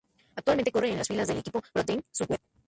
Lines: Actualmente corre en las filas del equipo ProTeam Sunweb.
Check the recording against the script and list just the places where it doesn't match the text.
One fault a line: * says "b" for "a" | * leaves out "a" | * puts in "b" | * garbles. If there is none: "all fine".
all fine